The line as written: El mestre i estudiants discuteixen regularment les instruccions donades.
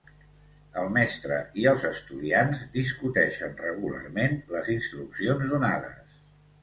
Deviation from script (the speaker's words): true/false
true